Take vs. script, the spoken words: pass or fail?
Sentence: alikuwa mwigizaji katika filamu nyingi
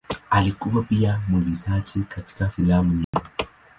fail